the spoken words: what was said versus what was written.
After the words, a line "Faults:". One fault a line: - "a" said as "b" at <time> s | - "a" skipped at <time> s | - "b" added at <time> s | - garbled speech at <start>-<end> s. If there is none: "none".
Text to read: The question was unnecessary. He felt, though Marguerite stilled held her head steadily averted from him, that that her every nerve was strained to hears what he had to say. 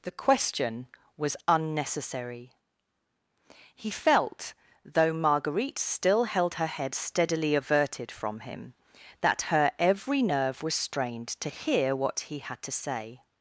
The question was unnecessary. He felt, though Marguerite still held her head steadily averted from him, that her every nerve was strained to hear what he had to say.
Faults:
- "stilled" said as "still" at 5.8 s
- "that" skipped at 9.5 s
- "hears" said as "hear" at 11.5 s